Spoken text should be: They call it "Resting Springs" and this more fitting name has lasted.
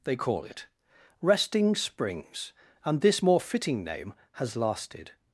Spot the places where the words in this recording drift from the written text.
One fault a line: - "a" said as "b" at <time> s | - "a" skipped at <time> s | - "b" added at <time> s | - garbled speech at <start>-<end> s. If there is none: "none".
none